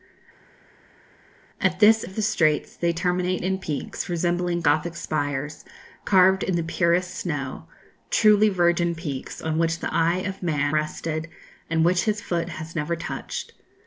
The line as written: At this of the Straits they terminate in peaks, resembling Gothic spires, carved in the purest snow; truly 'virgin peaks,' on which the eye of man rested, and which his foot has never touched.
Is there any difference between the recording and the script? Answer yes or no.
no